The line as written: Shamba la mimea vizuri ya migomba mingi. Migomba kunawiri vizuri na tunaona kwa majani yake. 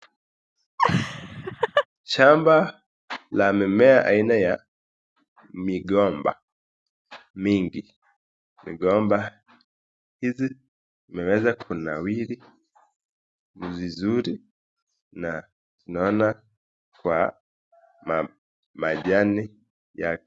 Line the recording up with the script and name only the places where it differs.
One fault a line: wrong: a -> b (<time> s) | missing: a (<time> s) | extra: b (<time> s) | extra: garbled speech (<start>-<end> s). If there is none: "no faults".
wrong: vizuri -> aina (4.1 s)
extra: hizi zimeweza (10.2 s)